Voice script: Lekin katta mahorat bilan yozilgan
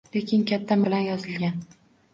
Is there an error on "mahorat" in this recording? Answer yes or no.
yes